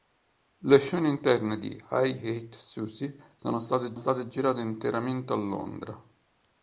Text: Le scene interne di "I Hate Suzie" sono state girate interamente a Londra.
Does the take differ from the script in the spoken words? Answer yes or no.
yes